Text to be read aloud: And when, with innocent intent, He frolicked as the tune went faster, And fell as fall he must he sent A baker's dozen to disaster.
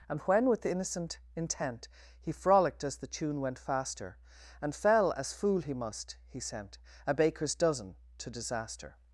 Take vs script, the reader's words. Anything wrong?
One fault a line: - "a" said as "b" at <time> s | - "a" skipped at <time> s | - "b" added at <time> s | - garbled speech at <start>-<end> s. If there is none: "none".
- "fall" said as "fool" at 5.3 s